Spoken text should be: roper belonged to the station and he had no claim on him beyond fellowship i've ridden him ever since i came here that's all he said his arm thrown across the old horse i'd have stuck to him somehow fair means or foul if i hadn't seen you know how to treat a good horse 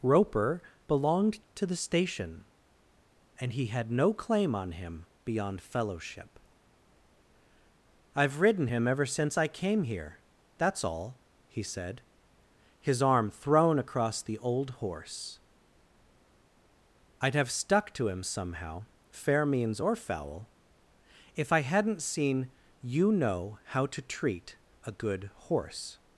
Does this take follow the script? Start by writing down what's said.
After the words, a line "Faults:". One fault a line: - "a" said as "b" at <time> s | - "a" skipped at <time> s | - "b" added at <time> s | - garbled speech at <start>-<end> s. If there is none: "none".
roper belonged to the station and he had no claim on him beyond fellowship i've ridden him ever since i came here that's all he said his arm thrown across the old horse i'd have stuck to him somehow fair means or foul if i hadn't seen you know how to treat a good horse
Faults:
none